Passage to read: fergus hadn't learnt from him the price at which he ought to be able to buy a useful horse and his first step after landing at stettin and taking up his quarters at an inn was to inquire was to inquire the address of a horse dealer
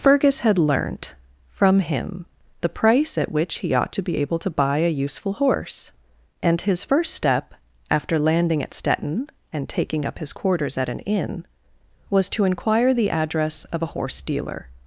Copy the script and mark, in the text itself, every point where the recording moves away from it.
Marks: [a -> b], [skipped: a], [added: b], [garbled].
fergus [hadn't -> had] learnt from him the price at which he ought to be able to buy a useful horse and his first step after landing at stettin and taking up his quarters at an inn was to inquire [skipped: was to inquire] the address of a horse dealer